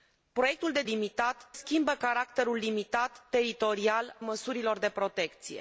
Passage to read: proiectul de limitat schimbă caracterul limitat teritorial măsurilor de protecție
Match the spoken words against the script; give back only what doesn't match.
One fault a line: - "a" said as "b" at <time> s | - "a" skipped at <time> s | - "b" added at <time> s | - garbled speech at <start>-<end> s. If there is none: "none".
none